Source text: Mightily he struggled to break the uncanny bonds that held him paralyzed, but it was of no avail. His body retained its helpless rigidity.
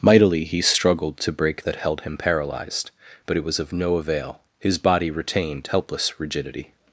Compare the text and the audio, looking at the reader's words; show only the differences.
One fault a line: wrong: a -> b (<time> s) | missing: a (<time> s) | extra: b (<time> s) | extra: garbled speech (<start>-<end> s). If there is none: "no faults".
missing: the uncanny bonds (1.6 s)
missing: its (5.7 s)